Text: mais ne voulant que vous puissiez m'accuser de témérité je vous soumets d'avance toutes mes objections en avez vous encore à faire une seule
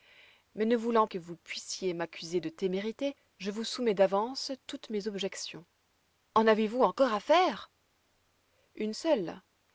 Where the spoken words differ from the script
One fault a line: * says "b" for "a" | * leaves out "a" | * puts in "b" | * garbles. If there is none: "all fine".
all fine